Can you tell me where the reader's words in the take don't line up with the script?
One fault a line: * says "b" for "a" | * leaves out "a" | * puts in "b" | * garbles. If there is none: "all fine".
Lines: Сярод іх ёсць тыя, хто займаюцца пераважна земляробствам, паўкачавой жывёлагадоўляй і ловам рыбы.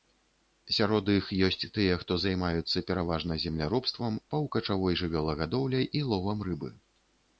all fine